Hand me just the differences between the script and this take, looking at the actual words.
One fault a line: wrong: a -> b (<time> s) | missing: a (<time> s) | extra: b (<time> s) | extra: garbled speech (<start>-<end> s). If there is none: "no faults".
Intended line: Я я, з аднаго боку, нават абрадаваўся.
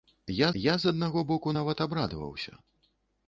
no faults